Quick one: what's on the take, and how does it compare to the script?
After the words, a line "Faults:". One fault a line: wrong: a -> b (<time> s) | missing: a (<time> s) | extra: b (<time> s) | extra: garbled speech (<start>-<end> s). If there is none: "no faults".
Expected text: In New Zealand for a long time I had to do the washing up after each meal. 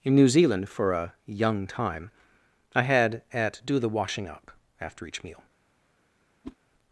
In New Zealand for a young time I had at do the washing up after each meal.
Faults:
wrong: long -> young (1.3 s)
wrong: to -> at (3.3 s)